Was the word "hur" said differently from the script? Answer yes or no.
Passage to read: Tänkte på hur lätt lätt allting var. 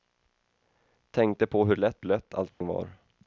no